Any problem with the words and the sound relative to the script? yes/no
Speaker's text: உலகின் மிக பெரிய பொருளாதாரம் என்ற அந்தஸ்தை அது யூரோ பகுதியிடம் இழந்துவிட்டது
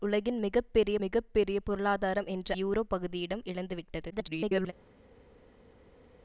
yes